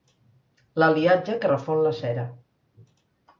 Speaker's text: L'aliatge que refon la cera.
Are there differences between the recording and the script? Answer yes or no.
no